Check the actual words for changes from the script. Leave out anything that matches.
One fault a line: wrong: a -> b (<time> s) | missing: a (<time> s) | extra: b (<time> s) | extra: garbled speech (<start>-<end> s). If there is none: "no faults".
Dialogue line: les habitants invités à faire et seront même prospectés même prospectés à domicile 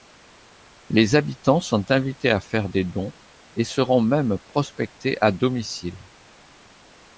extra: sont (1.6 s)
extra: des dons (2.7 s)
missing: même prospectés (5.2 s)